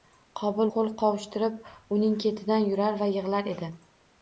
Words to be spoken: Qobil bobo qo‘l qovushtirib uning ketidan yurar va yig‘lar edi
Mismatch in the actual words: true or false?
true